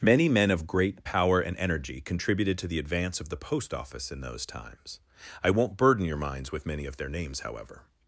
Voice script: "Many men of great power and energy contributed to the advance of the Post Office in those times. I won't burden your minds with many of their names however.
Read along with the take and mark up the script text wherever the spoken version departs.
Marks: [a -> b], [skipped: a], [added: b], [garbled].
"Many men of great power and energy contributed to the advance of the Post Office in those times. I won't burden your minds with many of their names however.